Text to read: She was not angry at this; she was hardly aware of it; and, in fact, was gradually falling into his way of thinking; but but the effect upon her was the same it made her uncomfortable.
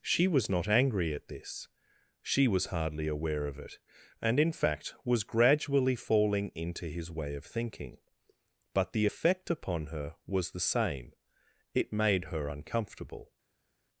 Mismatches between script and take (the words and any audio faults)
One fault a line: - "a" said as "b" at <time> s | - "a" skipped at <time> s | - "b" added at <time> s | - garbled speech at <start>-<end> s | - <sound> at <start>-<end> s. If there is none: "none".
- "but" skipped at 8.9 s